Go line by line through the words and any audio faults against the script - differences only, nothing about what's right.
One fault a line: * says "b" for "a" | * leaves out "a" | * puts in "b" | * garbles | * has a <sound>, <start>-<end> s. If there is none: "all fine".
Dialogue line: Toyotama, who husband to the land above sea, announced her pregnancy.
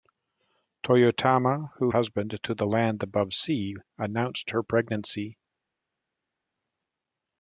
all fine